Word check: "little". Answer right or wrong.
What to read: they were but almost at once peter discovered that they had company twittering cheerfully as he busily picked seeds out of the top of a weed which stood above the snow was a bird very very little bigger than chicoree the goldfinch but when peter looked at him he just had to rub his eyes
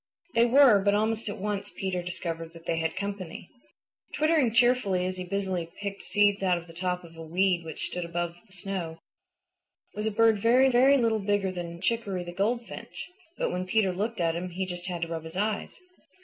right